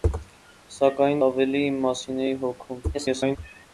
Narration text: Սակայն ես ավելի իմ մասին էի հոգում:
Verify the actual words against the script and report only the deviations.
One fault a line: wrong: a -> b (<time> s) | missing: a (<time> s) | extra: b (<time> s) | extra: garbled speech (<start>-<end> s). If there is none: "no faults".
missing: ես (1.2 s)
extra: garbled speech (2.9-3.4 s)